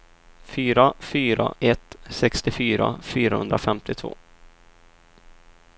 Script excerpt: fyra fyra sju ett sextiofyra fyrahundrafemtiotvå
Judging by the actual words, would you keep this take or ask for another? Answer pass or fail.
fail